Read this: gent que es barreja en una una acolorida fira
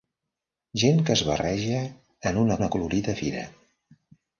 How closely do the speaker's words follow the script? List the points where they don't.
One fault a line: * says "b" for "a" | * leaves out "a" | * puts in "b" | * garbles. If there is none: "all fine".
all fine